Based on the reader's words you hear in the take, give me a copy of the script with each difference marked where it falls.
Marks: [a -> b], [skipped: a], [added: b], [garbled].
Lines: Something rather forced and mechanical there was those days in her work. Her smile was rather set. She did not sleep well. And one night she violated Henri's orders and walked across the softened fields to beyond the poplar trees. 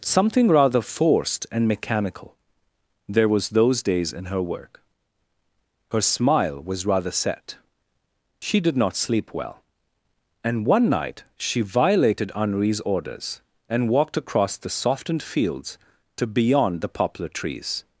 Something rather forced and mechanical there was those days in her work. Her smile was rather set. She did not sleep well. And one night she violated Henri's orders and walked across the softened fields to beyond the poplar trees.